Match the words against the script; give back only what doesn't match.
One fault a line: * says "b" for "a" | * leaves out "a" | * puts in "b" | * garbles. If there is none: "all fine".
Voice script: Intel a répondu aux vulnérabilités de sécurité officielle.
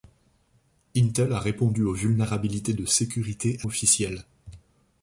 all fine